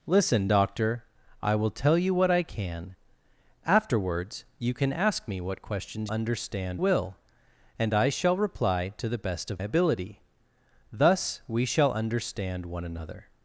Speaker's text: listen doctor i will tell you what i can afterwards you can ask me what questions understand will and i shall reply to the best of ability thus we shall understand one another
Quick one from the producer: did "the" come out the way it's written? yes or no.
yes